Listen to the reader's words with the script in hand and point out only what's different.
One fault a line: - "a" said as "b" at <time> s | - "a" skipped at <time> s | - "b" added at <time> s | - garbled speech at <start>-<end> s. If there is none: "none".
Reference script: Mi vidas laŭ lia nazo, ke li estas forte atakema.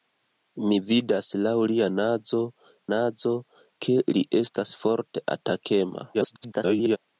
- "nazo" added at 2.9 s
- garbled speech at 6.1-7.0 s